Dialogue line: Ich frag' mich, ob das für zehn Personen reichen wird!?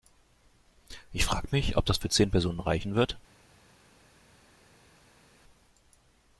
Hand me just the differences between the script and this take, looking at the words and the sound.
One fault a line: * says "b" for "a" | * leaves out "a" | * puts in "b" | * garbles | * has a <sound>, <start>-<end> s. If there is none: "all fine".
all fine